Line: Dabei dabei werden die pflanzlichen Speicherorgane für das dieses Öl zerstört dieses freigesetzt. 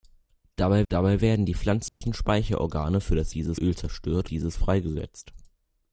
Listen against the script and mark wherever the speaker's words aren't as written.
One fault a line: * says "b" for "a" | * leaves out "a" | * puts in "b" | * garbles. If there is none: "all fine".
all fine